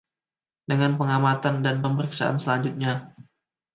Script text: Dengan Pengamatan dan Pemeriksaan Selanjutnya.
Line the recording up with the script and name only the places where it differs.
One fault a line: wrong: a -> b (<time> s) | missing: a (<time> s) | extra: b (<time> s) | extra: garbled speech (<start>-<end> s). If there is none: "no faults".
no faults